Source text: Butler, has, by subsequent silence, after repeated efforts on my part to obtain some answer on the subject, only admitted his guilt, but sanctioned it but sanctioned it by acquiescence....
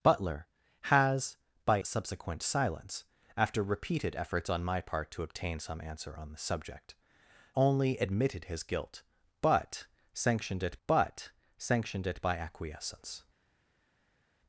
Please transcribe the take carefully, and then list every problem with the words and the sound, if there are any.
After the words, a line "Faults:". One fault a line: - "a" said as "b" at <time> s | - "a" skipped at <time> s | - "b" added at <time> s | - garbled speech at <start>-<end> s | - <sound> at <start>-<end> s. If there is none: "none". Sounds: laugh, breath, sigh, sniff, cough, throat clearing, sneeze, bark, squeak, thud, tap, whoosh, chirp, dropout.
Butler, has, by subsequent silence, after repeated efforts on my part to obtain some answer on the subject, only admitted his guilt, but sanctioned it but sanctioned it by acquiescence....
Faults:
none